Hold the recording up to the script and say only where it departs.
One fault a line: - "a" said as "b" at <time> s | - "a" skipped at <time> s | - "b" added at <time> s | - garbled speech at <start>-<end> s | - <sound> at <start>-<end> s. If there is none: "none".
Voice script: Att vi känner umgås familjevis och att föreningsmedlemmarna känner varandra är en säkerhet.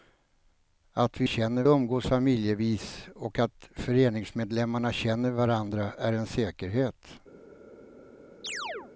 - chirp at 8.4-8.9 s